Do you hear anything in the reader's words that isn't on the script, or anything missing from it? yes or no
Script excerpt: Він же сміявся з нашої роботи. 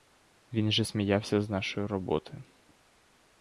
no